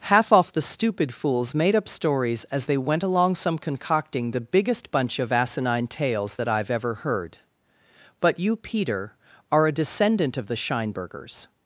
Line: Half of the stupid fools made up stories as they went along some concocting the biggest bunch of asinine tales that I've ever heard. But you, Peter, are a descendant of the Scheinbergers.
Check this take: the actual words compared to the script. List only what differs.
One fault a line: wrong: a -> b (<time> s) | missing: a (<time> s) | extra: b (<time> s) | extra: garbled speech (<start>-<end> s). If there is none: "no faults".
wrong: of -> off (0.3 s)